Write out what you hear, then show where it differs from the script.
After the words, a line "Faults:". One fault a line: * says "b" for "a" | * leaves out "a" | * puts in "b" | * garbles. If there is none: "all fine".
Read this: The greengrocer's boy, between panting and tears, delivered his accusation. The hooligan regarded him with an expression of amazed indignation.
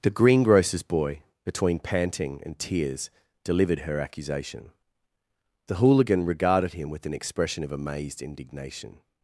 The greengrocer's boy, between panting and tears, delivered her accusation. The hooligan regarded him with an expression of amazed indignation.
Faults:
* says "her" for "his"